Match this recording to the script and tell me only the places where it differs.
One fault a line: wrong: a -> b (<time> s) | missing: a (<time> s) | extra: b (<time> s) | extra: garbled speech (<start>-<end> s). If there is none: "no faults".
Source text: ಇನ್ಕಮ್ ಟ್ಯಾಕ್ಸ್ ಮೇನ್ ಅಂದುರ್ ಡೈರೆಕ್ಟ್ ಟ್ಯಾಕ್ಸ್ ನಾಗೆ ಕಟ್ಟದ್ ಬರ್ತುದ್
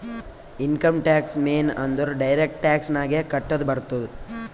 no faults